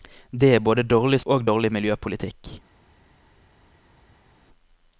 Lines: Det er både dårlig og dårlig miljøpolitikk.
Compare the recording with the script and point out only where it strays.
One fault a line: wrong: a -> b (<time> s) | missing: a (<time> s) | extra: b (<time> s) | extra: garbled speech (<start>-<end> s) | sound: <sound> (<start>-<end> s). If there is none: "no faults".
no faults